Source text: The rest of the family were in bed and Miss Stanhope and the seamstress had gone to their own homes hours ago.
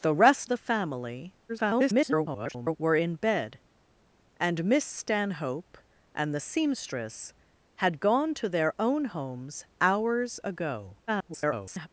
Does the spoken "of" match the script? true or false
false